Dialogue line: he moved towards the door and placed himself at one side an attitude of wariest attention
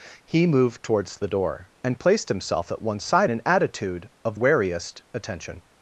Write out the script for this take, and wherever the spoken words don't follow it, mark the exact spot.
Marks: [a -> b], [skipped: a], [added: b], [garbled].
he moved towards the door and placed himself at one side an attitude of wariest attention